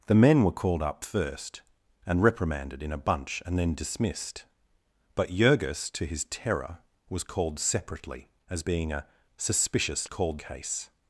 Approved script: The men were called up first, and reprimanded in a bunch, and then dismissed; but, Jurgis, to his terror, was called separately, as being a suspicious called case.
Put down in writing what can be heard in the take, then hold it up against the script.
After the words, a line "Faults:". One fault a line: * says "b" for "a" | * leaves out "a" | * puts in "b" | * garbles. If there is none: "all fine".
The men were called up first, and reprimanded in a bunch, and then dismissed; but, Jurgis, to his terror, was called separately, as being a suspicious called case.
Faults:
all fine